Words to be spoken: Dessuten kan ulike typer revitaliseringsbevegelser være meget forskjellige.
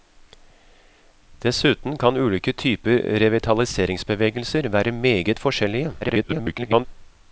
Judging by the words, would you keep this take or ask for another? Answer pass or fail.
fail